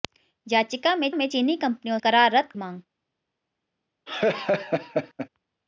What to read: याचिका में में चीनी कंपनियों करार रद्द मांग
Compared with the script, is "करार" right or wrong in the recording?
right